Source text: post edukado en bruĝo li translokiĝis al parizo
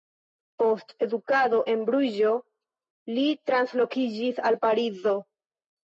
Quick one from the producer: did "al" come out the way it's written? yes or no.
yes